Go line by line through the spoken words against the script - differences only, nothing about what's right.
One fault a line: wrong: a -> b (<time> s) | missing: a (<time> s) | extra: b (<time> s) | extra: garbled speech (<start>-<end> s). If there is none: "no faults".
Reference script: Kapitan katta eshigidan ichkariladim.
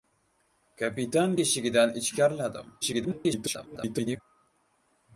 missing: katta (1.4 s)
extra: garbled speech (2.8-4.2 s)